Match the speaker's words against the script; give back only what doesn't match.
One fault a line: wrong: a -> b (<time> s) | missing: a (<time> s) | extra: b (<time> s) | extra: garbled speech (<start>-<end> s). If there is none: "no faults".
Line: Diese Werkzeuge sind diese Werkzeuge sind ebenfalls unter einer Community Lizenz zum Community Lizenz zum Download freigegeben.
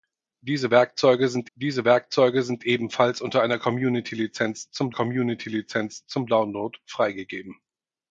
no faults